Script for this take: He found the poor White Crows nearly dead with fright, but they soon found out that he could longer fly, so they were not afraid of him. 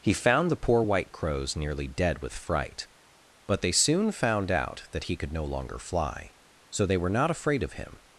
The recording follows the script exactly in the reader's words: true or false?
false